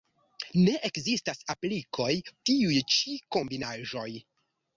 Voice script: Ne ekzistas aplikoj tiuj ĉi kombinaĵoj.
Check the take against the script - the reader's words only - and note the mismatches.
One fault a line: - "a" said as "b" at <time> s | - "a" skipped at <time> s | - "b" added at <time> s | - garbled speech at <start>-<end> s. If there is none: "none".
none